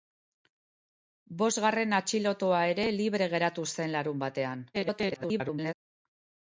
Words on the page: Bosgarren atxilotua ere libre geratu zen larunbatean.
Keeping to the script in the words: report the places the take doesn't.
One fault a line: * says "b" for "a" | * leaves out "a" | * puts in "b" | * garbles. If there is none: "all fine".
* garbles